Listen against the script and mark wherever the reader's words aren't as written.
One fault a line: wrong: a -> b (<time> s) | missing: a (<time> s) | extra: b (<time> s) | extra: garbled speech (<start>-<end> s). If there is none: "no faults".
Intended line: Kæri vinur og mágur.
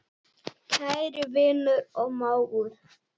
no faults